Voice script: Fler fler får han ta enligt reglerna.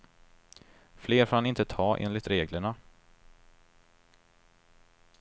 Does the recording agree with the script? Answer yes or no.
no